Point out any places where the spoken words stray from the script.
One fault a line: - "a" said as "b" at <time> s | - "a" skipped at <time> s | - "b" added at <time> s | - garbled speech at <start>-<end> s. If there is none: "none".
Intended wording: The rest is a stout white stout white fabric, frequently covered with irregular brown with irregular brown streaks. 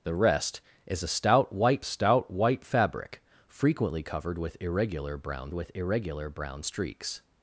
none